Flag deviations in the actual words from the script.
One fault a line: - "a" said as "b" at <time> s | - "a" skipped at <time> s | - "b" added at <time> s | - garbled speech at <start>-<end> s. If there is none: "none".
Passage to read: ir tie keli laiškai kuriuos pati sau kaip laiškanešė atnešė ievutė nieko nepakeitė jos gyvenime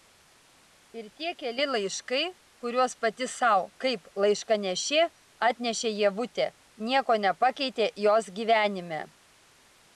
none